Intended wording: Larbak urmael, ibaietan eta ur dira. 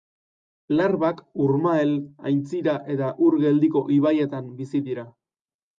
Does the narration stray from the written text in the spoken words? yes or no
yes